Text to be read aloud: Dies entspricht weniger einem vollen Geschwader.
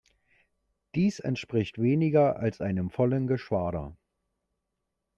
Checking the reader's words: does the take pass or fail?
fail